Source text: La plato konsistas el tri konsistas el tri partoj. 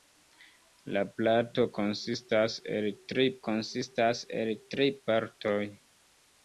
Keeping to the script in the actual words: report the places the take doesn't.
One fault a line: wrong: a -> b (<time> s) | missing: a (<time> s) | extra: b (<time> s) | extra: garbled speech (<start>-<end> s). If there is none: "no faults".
no faults